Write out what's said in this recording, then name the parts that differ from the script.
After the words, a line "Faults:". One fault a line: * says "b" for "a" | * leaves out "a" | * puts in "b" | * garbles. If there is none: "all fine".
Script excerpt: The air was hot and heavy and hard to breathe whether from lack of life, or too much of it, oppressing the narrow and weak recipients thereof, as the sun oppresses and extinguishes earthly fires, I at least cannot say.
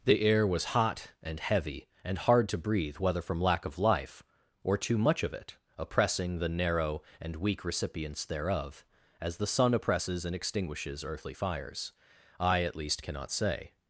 The air was hot and heavy and hard to breathe whether from lack of life, or too much of it, oppressing the narrow and weak recipients thereof, as the sun oppresses and extinguishes earthly fires, I at least cannot say.
Faults:
all fine